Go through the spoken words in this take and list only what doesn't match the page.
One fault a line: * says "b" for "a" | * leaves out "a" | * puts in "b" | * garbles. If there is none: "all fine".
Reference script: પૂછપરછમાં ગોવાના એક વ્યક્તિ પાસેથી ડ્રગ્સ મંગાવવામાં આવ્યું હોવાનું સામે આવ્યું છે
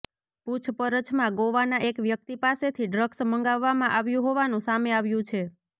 all fine